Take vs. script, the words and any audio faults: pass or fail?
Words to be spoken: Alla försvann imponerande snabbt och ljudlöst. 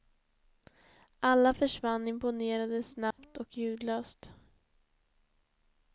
fail